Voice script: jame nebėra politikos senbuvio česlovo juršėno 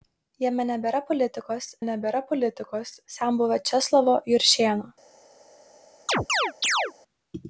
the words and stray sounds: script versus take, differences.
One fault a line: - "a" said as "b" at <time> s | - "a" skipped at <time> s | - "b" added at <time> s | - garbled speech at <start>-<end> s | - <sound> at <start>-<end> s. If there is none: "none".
- "nebėra politikos" added at 1.9 s
- chirp at 6.1-6.9 s